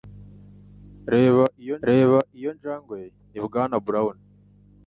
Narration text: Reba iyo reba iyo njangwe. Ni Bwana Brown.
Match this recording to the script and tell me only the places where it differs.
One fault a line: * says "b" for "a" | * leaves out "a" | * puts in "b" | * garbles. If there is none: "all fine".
all fine